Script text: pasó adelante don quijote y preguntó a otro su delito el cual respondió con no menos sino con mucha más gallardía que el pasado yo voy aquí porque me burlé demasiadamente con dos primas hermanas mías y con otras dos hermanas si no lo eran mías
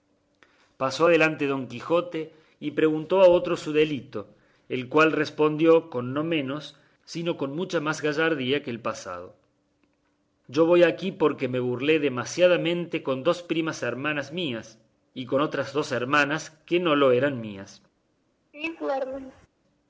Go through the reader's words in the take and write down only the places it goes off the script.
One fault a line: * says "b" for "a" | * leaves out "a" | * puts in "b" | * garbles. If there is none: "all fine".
* says "que" for "si"